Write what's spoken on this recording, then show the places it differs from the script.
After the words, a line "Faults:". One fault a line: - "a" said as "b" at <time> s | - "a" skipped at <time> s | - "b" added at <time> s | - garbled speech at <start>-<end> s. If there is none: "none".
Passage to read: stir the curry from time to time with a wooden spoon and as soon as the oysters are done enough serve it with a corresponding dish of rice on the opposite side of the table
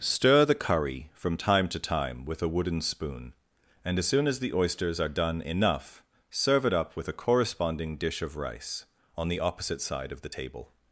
stir the curry from time to time with a wooden spoon and as soon as the oysters are done enough serve it up with a corresponding dish of rice on the opposite side of the table
Faults:
- "up" added at 6.7 s